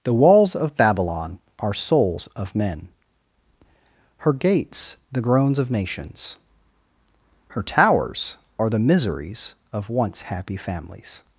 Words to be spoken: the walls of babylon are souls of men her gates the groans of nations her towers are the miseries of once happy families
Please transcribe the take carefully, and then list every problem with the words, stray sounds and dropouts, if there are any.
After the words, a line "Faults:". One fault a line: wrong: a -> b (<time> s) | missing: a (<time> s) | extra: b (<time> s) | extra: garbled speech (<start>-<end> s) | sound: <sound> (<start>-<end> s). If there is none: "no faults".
the walls of babylon are souls of men her gates the groans of nations her towers are the miseries of once happy families
Faults:
no faults